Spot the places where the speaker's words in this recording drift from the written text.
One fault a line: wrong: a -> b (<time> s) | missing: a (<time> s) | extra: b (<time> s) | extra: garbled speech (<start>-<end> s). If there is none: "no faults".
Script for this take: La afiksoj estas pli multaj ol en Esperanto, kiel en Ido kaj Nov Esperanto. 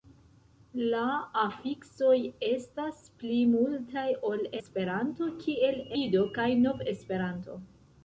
missing: en (4.4 s)
missing: en (5.8 s)